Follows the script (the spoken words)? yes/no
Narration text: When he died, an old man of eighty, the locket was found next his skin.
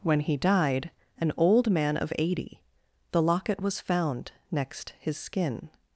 yes